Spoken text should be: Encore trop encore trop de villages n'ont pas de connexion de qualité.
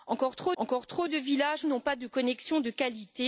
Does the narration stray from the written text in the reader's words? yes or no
no